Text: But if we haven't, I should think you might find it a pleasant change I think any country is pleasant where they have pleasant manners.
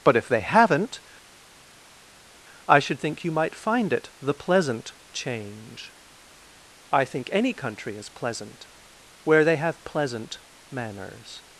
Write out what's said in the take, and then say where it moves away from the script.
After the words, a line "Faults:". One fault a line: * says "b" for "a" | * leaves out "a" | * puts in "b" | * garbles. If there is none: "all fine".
But if they haven't, I should think you might find it the pleasant change I think any country is pleasant where they have pleasant manners.
Faults:
* says "they" for "we"
* says "the" for "a"